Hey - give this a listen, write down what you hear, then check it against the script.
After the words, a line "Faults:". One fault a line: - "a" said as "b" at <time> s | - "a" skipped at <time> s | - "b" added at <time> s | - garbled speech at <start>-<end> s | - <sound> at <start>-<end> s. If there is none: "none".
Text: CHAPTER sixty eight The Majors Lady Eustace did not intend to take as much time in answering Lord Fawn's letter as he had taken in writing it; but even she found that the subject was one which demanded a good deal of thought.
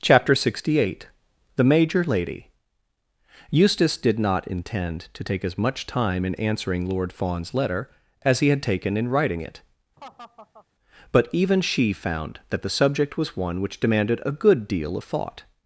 CHAPTER sixty eight The Major Lady Eustace did not intend to take as much time in answering Lord Fawn's letter as he had taken in writing it; but even she found that the subject was one which demanded a good deal of thought.
Faults:
- "Majors" said as "Major" at 1.6 s
- laugh at 10.0-10.7 s